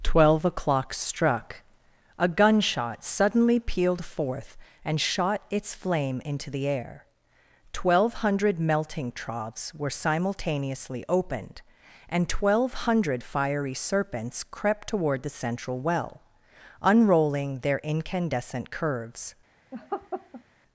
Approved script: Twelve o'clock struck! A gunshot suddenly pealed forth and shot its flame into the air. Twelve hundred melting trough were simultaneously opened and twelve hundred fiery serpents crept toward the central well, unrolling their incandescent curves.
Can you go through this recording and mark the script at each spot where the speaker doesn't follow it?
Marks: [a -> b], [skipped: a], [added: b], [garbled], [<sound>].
Twelve o'clock struck! A gunshot suddenly pealed forth and shot its flame into the air. Twelve hundred melting [trough -> troughs] were simultaneously opened and twelve hundred fiery serpents crept toward the central well, unrolling their incandescent curves. [laugh]